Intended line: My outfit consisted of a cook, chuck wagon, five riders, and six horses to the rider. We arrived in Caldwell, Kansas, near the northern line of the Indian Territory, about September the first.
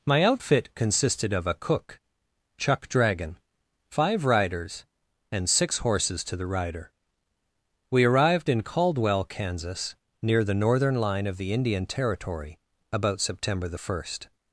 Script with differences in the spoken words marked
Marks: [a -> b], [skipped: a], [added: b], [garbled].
My outfit consisted of a cook, chuck [wagon, -> dragon] five riders, and six horses to the rider. We arrived in Caldwell, Kansas, near the northern line of the Indian Territory, about September the first.